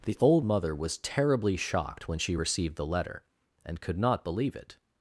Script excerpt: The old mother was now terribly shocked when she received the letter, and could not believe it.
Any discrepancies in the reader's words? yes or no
yes